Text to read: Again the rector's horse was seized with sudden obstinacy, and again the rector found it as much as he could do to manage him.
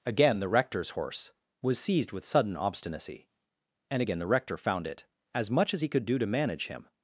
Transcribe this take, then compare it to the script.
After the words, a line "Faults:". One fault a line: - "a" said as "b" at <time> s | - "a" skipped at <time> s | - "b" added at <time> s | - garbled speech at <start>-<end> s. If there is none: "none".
Again the rector's horse was seized with sudden obstinacy, and again the rector found it as much as he could do to manage him.
Faults:
none